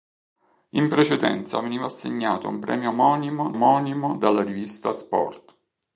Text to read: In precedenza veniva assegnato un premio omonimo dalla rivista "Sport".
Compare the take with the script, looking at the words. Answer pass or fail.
fail